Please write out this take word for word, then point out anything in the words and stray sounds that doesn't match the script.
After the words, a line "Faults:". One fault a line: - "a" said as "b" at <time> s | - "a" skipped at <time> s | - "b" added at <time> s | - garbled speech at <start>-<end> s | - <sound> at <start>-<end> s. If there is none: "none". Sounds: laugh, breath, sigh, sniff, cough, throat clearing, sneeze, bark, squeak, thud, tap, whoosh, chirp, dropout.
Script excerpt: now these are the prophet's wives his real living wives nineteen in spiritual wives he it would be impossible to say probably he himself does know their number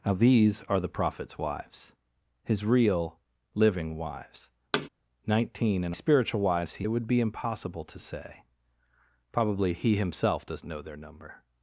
now these are the prophet's wives his real living wives nineteen in spiritual wives he it would be impossible to say probably he himself does know their number
Faults:
- thud at 4.7-4.9 s